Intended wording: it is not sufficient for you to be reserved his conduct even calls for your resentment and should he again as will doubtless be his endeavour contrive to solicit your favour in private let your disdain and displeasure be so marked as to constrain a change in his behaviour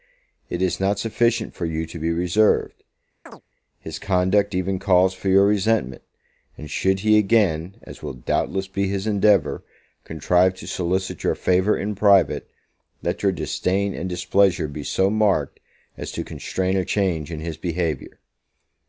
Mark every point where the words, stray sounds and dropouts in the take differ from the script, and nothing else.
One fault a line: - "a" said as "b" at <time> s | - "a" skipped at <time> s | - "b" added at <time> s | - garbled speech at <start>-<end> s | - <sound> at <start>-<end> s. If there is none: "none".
- chirp at 3.3-3.4 s